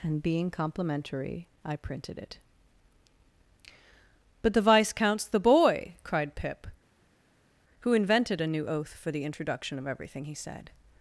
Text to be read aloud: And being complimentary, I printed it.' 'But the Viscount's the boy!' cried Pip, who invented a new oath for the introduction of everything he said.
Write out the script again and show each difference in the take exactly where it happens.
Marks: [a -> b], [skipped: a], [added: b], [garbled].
And being complimentary, I printed it.' 'But the Viscount's the boy!' cried Pip, who invented a new oath for the introduction of everything he said.